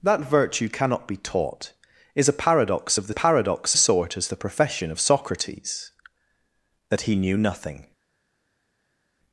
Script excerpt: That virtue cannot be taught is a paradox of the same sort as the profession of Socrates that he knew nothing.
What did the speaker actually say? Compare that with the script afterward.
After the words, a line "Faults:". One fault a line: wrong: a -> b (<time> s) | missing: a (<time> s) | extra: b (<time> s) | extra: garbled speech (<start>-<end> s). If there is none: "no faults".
That virtue cannot be taught is a paradox of the paradox sort as the profession of Socrates that he knew nothing.
Faults:
wrong: same -> paradox (3.1 s)